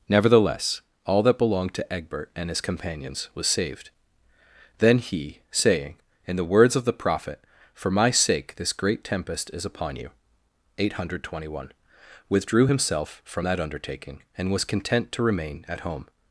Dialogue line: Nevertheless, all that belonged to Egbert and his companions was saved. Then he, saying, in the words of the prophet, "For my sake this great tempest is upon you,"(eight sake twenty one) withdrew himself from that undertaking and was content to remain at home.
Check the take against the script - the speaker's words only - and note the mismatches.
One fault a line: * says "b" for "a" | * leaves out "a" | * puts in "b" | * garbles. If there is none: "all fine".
* says "hundred" for "sake"